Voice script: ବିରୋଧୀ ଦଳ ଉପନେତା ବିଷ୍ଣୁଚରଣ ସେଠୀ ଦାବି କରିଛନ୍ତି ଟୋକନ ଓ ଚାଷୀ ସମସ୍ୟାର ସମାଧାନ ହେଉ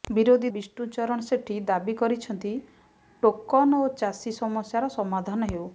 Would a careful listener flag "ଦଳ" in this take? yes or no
yes